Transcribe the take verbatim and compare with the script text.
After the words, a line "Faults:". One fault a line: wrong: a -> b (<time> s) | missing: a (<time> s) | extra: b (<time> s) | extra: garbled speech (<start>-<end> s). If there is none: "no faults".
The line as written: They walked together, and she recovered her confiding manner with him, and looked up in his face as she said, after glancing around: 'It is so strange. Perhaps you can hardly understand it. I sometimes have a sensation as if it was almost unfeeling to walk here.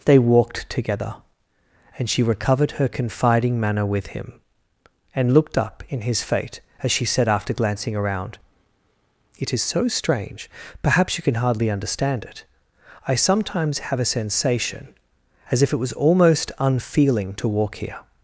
They walked together, and she recovered her confiding manner with him, and looked up in his fate as she said, after glancing around: 'It is so strange. Perhaps you can hardly understand it. I sometimes have a sensation as if it was almost unfeeling to walk here.
Faults:
wrong: face -> fate (6.2 s)